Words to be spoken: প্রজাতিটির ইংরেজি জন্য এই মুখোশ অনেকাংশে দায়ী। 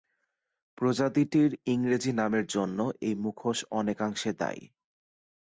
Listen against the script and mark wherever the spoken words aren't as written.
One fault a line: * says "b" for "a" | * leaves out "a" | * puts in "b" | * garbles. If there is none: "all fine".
* puts in "নামের"